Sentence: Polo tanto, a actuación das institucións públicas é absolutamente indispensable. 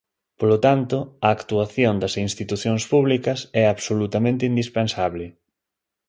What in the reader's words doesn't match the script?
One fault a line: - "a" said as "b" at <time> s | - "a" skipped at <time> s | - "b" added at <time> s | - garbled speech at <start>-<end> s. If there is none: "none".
none